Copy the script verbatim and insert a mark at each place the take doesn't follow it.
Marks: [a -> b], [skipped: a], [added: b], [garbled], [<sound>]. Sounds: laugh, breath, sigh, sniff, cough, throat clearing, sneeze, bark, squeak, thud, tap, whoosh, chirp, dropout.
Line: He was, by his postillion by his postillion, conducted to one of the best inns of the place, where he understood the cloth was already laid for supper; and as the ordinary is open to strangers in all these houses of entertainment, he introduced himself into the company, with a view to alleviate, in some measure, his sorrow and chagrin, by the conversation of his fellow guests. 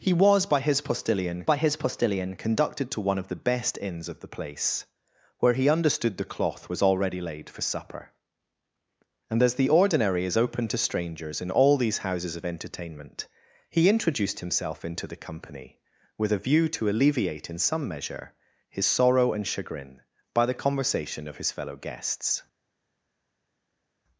He was, by his postillion by his postillion, conducted to one of the best inns of the place, where he understood the cloth was already laid for supper; and as the ordinary is open to strangers in all these houses of entertainment, he introduced himself into the company, with a view to alleviate, in some measure, his sorrow and chagrin, by the conversation of his fellow guests.